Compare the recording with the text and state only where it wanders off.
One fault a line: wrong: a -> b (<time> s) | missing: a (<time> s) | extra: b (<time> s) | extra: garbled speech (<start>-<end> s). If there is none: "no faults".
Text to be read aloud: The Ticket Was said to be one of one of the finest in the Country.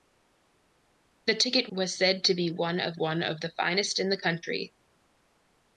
no faults